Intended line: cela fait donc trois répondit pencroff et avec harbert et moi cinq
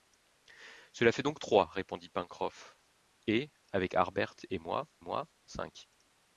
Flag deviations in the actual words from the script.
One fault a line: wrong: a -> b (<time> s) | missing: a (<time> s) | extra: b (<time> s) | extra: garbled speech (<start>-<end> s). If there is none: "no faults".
extra: moi (5.0 s)